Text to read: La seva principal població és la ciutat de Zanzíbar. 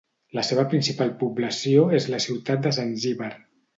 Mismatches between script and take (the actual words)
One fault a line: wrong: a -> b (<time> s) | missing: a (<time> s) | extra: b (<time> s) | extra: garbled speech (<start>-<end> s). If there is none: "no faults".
no faults